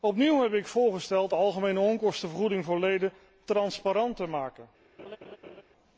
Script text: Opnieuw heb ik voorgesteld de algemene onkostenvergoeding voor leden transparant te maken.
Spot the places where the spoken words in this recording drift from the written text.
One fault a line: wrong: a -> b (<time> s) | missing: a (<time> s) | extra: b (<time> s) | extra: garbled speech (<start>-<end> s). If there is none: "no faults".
no faults